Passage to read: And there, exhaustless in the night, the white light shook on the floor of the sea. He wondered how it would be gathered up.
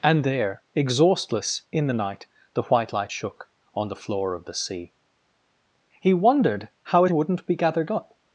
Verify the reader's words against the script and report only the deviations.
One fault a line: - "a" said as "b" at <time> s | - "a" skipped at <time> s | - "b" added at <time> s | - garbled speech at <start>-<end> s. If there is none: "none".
- "would" said as "wouldn't" at 7.1 s